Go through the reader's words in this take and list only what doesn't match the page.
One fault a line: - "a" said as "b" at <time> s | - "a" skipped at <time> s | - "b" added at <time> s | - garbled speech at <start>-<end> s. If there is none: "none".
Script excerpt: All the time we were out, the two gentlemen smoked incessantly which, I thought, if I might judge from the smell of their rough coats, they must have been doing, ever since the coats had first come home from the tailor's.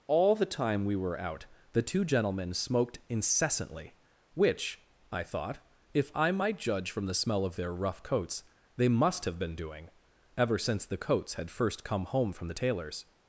none